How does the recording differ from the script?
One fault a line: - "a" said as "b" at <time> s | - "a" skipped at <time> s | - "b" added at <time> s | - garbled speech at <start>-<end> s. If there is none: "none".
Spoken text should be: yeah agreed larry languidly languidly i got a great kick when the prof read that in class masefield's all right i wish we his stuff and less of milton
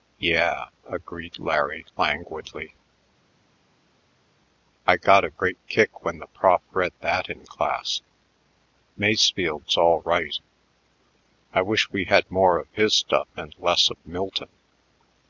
- "languidly" skipped at 2.7 s
- "had more of" added at 12.0 s